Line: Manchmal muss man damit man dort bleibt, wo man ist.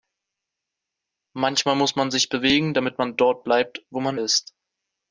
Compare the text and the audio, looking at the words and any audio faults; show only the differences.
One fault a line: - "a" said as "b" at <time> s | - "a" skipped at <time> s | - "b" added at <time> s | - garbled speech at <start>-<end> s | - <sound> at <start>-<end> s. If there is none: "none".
- "sich bewegen" added at 2.1 s